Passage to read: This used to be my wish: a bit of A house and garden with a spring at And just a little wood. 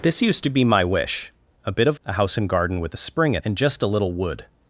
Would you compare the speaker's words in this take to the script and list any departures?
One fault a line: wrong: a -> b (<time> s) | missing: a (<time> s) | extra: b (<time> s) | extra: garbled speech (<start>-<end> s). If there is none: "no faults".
no faults